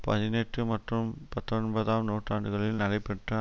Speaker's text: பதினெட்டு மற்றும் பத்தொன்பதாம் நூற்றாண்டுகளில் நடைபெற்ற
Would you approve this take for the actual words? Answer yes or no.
yes